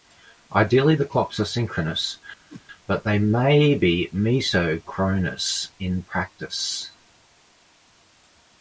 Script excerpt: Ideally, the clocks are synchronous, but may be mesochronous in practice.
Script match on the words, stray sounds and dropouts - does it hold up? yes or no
no